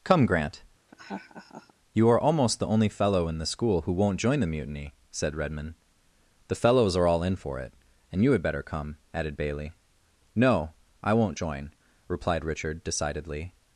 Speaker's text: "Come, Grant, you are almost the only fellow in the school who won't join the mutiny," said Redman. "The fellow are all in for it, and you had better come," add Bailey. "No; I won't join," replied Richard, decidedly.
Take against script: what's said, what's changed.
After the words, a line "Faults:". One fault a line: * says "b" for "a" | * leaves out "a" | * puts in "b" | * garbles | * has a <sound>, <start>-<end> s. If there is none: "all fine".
"Come, Grant, you are almost the only fellow in the school who won't join the mutiny," said Redman. "The fellows are all in for it, and you had better come," added Bailey. "No; I won't join," replied Richard, decidedly.
Faults:
* has a laugh, 0.9-1.7 s
* says "fellows" for "fellow"
* says "added" for "add"